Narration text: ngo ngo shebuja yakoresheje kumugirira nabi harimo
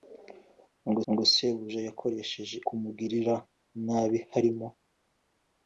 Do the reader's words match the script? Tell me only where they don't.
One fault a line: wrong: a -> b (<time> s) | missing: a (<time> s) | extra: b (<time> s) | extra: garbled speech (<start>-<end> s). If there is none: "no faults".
no faults